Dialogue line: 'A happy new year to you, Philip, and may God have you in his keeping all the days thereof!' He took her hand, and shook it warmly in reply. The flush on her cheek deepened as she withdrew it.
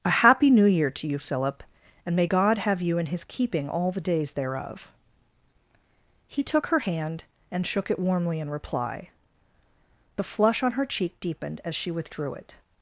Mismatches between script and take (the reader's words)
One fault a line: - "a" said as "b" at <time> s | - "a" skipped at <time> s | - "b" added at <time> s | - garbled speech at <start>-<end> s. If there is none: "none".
none